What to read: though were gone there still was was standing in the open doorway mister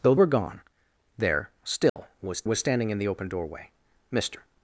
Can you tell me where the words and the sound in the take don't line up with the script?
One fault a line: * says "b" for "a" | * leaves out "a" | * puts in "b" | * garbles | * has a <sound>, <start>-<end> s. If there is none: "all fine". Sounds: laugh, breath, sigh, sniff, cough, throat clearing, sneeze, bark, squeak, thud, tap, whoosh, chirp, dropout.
* has a dropout, 1.9-2.0 s